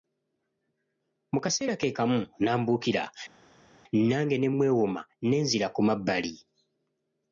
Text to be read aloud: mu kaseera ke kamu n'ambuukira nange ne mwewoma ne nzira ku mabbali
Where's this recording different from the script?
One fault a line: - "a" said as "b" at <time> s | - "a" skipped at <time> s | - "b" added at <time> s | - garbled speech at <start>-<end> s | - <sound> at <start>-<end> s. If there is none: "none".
none